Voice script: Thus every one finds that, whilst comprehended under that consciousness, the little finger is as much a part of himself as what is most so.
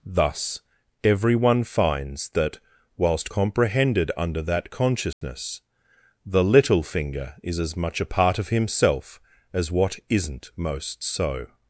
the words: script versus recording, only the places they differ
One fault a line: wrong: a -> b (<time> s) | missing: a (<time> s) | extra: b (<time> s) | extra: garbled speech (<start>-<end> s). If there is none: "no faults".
wrong: is -> isn't (10.1 s)